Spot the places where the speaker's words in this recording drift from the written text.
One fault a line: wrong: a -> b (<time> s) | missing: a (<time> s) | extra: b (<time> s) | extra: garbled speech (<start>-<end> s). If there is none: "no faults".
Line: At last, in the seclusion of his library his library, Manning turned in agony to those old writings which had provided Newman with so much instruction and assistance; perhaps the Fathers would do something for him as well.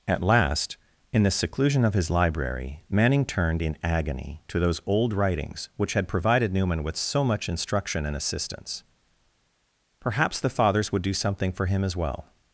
missing: his library (2.8 s)